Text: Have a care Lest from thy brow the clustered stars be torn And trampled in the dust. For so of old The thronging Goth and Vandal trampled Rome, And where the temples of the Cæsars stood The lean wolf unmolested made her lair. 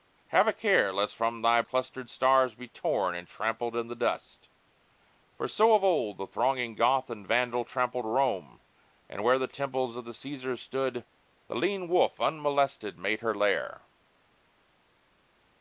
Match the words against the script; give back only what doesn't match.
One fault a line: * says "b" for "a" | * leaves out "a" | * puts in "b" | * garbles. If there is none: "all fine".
* leaves out "brow the"